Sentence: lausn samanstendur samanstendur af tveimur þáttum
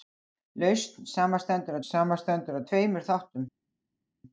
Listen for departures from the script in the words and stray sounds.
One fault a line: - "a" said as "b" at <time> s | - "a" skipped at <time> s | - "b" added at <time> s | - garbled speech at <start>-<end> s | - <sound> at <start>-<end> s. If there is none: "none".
none